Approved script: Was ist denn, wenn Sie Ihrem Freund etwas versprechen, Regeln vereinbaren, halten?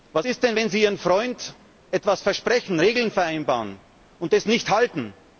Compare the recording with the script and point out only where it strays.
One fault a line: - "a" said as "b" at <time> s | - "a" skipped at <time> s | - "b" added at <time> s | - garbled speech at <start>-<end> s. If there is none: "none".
- "und das nicht" added at 4.2 s